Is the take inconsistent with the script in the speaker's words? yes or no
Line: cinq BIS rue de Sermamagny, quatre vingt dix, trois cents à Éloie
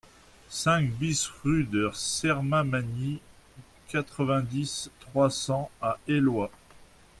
no